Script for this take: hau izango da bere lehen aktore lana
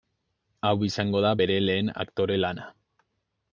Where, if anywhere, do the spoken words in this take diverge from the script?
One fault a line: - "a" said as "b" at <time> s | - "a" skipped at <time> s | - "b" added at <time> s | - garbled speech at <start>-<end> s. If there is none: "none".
none